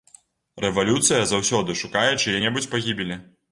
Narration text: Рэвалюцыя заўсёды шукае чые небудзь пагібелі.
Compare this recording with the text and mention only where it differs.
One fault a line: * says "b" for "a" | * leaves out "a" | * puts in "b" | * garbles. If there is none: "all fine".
all fine